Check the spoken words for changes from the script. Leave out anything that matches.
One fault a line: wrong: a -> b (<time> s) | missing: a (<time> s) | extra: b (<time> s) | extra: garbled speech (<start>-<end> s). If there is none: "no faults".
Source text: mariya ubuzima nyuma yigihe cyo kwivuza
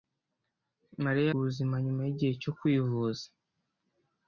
no faults